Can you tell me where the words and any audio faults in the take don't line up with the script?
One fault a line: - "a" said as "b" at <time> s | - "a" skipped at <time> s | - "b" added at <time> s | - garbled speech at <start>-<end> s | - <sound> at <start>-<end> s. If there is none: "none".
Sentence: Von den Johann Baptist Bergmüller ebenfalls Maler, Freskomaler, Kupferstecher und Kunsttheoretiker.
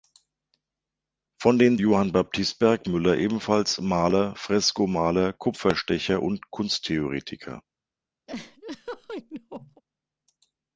- laugh at 8.3-9.8 s